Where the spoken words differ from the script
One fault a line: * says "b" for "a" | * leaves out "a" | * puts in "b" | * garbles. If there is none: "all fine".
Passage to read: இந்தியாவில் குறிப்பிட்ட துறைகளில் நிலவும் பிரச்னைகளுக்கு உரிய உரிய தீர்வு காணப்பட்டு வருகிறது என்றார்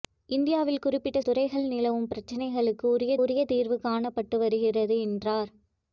all fine